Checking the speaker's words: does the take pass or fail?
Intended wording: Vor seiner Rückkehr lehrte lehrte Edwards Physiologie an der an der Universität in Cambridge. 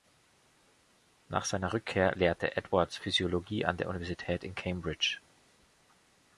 fail